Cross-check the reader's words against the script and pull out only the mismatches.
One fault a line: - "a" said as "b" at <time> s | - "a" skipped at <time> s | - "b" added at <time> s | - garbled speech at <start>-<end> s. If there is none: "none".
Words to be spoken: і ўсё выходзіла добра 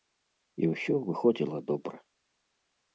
none